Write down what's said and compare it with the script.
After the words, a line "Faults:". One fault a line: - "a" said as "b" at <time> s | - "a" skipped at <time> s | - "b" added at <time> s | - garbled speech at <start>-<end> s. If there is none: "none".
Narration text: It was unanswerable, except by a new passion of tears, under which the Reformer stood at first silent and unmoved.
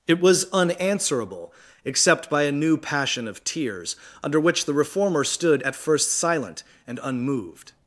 It was unanswerable, except by a new passion of tears, under which the Reformer stood at first silent and unmoved.
Faults:
none